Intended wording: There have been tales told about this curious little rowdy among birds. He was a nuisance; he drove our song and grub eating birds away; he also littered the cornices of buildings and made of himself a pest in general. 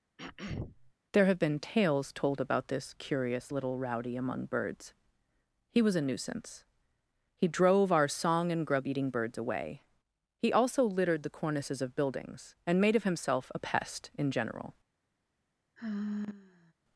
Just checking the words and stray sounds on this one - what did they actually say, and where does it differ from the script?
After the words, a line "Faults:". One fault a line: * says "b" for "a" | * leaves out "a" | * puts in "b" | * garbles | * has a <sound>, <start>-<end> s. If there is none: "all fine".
There have been tales told about this curious little rowdy among birds. He was a nuisance; he drove our song and grub eating birds away; he also littered the cornices of buildings and made of himself a pest in general.
Faults:
* has a throat clearing, 0.2-0.9 s
* has a sigh, 15.8-16.7 s